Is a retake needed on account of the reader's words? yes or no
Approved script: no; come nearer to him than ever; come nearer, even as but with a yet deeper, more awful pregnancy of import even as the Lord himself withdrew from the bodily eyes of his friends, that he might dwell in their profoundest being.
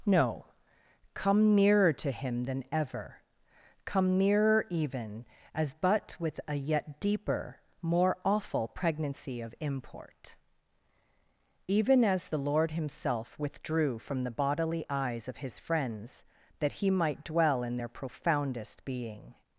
no